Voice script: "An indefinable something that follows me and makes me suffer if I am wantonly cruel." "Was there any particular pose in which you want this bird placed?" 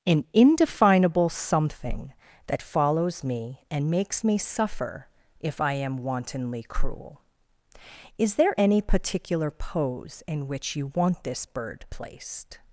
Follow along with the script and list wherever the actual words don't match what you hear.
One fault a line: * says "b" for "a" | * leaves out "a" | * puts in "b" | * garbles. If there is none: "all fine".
* says "Is" for "Was"